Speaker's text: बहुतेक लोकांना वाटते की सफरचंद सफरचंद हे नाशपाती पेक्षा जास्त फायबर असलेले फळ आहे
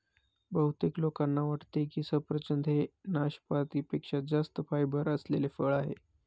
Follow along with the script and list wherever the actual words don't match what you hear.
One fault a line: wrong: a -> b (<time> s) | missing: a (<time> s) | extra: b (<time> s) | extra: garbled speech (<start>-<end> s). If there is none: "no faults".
missing: सफरचंद (2.7 s)